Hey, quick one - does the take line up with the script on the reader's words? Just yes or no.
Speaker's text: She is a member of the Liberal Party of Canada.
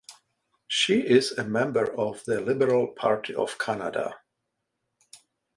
yes